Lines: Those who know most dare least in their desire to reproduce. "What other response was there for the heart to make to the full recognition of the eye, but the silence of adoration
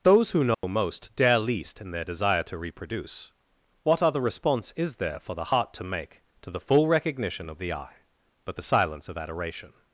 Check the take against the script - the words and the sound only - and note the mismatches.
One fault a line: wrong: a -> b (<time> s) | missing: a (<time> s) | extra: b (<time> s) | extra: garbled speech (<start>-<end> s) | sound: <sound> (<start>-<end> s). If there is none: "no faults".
sound: dropout (0.5-0.6 s)
wrong: was -> is (4.8 s)